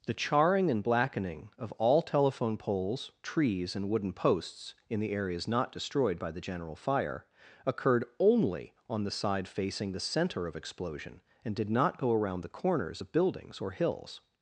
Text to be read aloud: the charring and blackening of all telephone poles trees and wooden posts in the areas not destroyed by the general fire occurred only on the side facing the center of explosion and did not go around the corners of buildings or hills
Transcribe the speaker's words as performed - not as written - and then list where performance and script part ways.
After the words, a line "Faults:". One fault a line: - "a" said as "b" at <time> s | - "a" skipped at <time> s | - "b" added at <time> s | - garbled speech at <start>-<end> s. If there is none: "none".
the charring and blackening of all telephone poles trees and wooden posts in the areas not destroyed by the general fire occurred only on the side facing the center of explosion and did not go around the corners of buildings or hills
Faults:
none